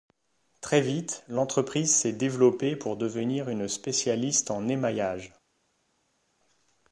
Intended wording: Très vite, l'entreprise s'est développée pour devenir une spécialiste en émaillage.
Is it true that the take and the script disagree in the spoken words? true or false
false